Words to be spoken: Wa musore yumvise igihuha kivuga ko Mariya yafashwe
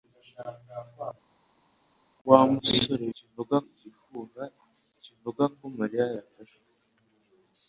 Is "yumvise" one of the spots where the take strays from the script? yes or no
yes